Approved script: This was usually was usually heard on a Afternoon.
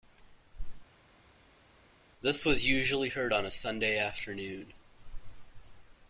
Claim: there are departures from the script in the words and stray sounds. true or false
true